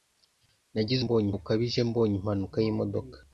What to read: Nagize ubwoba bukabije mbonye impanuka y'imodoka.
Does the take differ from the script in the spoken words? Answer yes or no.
yes